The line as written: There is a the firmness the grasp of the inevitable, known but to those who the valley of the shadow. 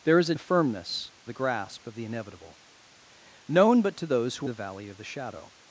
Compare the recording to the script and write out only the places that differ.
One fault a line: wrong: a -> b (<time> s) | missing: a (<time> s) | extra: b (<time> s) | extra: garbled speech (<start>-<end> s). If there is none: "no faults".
no faults